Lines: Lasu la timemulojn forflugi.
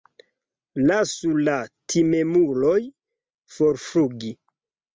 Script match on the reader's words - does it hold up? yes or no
yes